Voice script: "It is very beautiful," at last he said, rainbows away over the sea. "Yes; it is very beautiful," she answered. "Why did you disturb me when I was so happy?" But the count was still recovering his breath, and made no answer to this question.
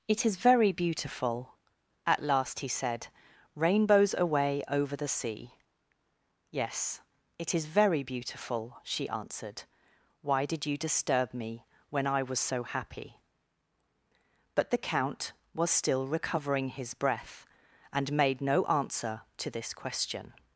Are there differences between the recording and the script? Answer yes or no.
no